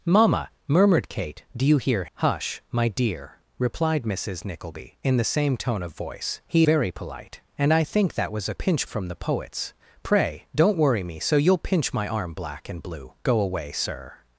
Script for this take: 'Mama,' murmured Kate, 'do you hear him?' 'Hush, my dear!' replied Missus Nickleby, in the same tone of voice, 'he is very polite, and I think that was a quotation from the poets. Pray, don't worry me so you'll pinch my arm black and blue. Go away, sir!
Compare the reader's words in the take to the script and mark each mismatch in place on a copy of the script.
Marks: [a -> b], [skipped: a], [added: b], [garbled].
'Mama,' murmured Kate, 'do you hear [skipped: him?'] 'Hush, my dear!' replied Missus Nickleby, in the same tone of voice, 'he [skipped: is] very polite, and I think that was a [quotation -> pinch] from the poets. Pray, don't worry me so you'll pinch my arm black and blue. Go away, sir!